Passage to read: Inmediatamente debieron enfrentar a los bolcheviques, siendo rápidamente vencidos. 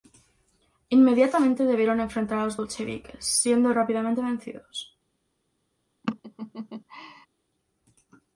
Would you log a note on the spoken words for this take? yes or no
no